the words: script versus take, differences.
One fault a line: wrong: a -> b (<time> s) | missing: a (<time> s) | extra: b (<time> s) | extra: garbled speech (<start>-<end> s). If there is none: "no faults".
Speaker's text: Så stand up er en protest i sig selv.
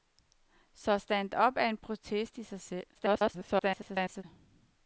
extra: garbled speech (2.9-4.2 s)